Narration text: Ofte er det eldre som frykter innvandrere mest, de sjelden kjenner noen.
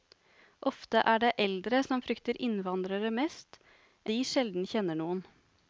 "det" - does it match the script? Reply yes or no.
yes